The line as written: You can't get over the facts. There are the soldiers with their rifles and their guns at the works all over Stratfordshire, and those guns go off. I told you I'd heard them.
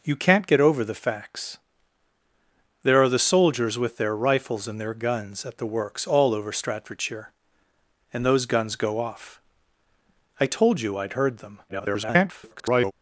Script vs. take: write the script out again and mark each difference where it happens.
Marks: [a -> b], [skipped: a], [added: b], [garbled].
You can't get over the facts. There are the soldiers with their rifles and their guns at the works all over Stratfordshire, and those guns go off. I told you I'd heard them. [garbled]